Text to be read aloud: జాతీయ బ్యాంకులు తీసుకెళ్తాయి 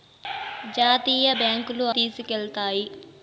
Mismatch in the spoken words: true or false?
false